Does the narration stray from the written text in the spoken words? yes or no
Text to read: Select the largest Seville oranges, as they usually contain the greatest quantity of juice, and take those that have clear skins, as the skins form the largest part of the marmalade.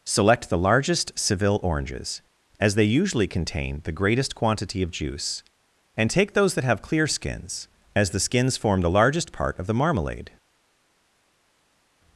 no